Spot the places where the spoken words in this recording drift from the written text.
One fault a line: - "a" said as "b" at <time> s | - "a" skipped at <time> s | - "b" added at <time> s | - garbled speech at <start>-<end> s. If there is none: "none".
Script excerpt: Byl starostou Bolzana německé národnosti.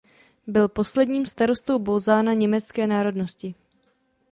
- "posledním" added at 0.7 s